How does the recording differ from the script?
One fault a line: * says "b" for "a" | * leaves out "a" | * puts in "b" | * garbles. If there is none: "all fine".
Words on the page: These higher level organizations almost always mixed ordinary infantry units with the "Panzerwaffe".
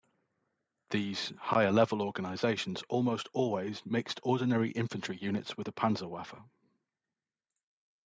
all fine